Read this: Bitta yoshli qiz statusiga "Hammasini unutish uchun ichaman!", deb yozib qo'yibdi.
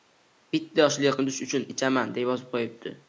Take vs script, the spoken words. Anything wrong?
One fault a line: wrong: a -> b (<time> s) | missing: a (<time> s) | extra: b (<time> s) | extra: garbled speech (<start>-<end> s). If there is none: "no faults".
missing: qiz statusiga Hammasini (1.1 s)